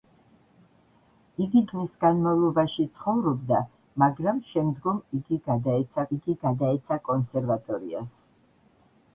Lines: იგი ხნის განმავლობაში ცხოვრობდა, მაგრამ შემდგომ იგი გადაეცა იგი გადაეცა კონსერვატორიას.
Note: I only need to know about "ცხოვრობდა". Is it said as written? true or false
true